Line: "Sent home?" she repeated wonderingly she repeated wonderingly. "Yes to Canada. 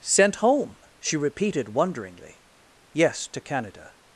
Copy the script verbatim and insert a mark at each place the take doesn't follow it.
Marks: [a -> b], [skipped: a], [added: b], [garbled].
"Sent home?" she repeated wonderingly [skipped: she repeated wonderingly.] "Yes to Canada.